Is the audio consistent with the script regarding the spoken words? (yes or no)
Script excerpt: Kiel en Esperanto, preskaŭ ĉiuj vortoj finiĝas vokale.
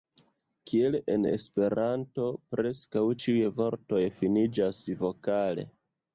yes